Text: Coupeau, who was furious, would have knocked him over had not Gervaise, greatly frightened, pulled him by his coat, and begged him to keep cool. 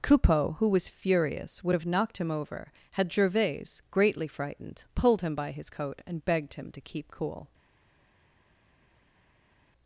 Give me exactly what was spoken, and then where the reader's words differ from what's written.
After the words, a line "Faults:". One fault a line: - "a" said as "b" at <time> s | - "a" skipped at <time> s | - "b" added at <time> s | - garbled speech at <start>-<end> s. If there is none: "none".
Coupeau, who was furious, would have knocked him over had Gervaise, greatly frightened, pulled him by his coat, and begged him to keep cool.
Faults:
- "not" skipped at 3.1 s